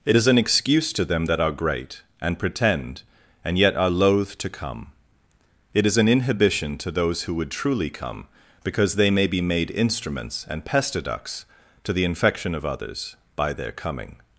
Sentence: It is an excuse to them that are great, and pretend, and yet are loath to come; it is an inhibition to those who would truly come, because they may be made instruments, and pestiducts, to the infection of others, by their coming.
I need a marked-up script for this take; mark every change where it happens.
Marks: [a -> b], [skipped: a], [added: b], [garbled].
It is an excuse to them that are great, and pretend, and yet are loath to come; it is an inhibition to those who would truly come, because they may be made instruments, and pestiducts, to the infection of others, by their coming.